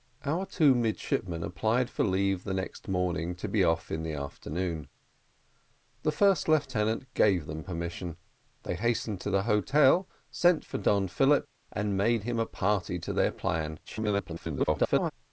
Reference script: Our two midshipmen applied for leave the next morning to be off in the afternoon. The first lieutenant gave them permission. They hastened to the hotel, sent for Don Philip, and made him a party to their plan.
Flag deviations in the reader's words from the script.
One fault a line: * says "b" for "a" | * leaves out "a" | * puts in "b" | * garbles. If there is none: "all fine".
* garbles